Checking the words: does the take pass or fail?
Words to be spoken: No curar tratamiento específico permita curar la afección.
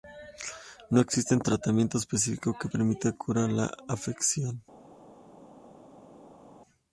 fail